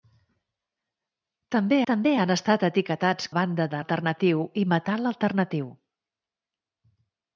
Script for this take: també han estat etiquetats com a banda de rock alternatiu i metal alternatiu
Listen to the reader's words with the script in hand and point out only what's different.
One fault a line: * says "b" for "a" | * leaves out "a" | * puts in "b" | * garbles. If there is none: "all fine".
* puts in "també"
* leaves out "com"
* leaves out "rock"